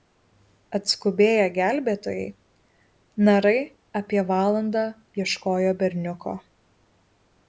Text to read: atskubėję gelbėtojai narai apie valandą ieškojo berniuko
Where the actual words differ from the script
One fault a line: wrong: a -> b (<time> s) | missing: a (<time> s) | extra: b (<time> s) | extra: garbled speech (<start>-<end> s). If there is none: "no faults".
no faults